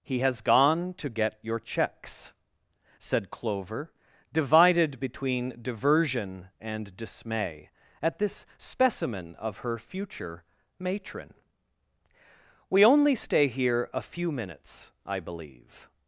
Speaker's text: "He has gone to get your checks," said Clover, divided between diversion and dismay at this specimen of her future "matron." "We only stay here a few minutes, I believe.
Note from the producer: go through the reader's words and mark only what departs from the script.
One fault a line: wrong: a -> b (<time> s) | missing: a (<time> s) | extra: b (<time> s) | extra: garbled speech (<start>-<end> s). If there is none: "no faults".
no faults